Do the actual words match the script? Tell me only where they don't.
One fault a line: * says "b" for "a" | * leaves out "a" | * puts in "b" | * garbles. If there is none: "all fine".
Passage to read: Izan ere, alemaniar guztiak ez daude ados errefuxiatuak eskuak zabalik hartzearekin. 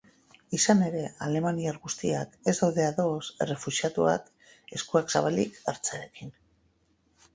all fine